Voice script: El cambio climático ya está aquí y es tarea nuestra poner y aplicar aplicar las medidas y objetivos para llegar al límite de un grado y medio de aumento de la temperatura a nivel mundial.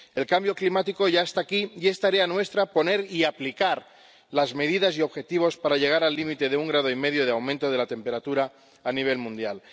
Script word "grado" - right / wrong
right